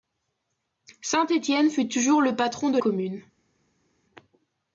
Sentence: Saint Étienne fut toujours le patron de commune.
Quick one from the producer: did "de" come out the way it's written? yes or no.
yes